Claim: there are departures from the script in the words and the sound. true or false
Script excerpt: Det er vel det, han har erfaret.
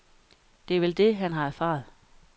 false